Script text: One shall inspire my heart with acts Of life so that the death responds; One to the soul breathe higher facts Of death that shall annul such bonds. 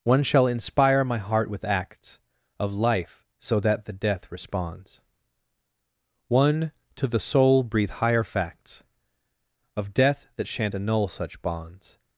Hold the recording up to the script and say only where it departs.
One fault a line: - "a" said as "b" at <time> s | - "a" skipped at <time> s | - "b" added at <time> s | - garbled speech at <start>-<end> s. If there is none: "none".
- "shall" said as "shan't" at 10.5 s